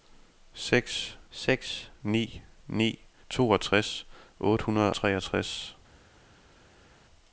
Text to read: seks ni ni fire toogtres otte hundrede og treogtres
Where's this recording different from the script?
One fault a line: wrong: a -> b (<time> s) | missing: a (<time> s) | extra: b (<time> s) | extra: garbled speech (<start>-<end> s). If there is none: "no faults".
extra: seks (1.3 s)
missing: fire (3.0 s)
missing: og (4.9 s)